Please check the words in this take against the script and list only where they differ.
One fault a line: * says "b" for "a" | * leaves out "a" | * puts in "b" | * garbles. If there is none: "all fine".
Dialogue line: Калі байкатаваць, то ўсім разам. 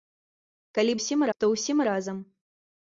* says "ўсім" for "байкатаваць"